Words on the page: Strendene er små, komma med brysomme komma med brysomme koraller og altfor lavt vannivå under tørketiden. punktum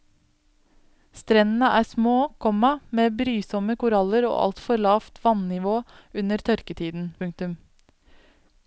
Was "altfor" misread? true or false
false